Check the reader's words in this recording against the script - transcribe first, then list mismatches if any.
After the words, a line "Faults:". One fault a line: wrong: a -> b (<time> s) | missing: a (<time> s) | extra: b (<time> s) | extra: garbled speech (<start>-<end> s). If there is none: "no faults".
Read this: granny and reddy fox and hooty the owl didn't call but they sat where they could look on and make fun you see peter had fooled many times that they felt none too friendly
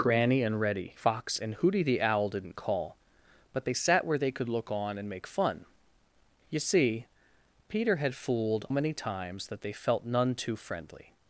granny and reddy fox and hooty the owl didn't call but they sat where they could look on and make fun you see peter had fooled many times that they felt none too friendly
Faults:
no faults